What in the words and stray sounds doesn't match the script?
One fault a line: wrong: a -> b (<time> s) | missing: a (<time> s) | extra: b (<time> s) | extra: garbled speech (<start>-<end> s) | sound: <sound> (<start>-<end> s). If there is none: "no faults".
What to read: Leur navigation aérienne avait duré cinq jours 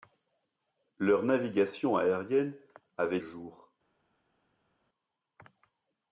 missing: duré cinq (3.2 s)